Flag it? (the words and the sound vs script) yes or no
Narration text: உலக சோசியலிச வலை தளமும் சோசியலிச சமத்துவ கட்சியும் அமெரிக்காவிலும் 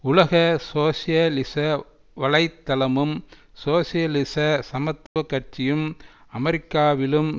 yes